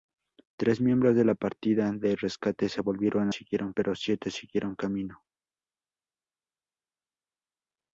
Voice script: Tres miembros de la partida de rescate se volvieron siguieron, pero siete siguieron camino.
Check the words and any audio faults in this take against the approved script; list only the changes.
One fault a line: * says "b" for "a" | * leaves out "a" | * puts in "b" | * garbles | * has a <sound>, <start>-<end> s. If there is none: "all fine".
all fine